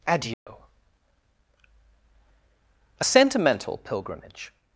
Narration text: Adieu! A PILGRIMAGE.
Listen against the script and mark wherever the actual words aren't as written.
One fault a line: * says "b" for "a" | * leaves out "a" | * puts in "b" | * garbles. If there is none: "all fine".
* puts in "SENTIMENTAL"